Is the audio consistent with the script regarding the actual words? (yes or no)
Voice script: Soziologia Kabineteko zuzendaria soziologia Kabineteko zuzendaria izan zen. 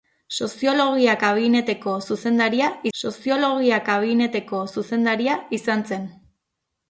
yes